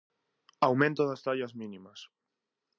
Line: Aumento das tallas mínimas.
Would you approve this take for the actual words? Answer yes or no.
yes